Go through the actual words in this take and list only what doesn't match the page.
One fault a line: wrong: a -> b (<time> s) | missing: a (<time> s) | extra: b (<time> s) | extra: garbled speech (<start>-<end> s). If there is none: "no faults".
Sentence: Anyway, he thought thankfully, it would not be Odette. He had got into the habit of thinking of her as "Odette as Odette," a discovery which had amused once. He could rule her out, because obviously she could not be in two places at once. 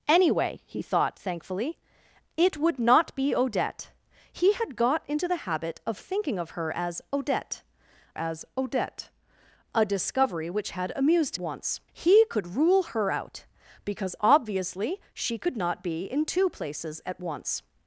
no faults